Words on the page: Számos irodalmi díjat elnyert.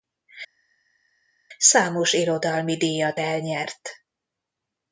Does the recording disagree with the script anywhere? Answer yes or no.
no